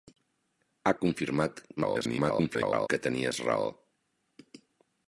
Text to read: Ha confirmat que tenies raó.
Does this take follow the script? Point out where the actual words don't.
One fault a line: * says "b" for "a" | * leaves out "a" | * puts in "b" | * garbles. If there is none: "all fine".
* garbles